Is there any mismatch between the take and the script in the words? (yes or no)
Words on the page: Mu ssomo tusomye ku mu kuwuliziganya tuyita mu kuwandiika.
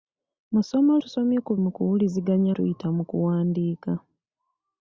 no